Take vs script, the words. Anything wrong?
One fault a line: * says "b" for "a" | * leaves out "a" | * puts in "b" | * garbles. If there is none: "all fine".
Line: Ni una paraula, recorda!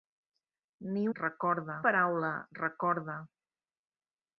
* says "recorda" for "una"